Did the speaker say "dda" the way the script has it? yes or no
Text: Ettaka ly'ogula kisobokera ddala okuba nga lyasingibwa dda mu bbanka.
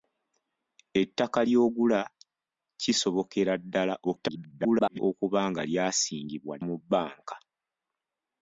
no